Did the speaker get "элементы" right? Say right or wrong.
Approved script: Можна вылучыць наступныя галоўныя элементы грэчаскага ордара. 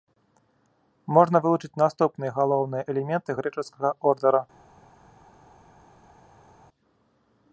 right